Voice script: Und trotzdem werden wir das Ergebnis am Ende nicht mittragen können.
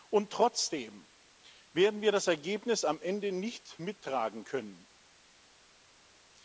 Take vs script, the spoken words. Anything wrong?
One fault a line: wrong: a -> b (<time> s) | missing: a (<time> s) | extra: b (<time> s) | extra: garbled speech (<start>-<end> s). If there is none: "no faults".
no faults